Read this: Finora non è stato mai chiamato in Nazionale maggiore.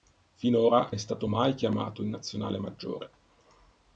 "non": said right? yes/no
no